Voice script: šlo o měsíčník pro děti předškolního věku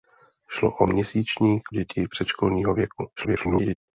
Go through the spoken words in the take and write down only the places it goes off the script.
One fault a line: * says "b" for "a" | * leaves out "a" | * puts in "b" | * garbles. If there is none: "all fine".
* leaves out "pro"
* garbles